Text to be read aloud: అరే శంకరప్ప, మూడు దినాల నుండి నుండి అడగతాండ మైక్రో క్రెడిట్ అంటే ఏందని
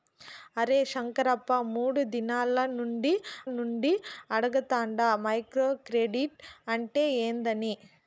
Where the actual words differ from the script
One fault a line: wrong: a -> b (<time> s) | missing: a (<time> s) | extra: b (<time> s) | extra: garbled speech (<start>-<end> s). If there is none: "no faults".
no faults